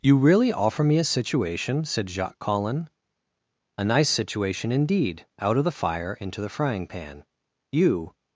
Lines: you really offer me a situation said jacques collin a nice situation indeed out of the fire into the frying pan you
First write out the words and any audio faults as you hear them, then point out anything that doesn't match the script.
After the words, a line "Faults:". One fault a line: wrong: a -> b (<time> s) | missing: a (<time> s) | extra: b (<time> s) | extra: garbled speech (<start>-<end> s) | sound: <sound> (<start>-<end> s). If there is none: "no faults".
you really offer me a situation said jacques collin a nice situation indeed out of the fire into the frying pan you
Faults:
no faults